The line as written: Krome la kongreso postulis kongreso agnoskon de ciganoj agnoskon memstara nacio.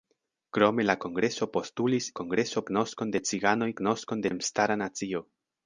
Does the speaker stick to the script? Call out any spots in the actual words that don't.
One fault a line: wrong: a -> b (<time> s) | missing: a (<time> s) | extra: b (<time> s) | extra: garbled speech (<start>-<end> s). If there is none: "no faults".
no faults